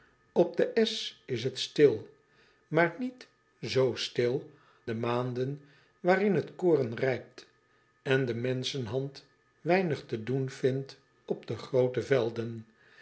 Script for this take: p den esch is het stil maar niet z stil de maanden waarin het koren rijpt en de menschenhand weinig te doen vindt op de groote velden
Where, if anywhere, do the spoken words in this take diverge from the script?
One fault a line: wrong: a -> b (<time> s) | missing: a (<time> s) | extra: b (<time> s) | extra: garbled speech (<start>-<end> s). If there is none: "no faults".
no faults